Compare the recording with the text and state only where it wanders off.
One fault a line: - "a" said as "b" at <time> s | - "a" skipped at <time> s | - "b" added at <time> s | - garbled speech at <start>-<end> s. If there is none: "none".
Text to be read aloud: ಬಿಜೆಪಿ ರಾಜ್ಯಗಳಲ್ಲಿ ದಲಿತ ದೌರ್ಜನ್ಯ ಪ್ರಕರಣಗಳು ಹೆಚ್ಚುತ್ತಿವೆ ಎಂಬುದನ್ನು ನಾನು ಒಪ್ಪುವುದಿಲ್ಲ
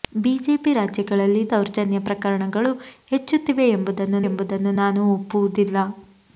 - "ದಲಿತ" skipped at 1.4 s
- "ಎಂಬುದನ್ನು" added at 4.2 s